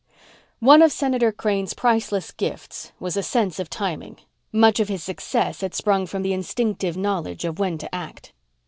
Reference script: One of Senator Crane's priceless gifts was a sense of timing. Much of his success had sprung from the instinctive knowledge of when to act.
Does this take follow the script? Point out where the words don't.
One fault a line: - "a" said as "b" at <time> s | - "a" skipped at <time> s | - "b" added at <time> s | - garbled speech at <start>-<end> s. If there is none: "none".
none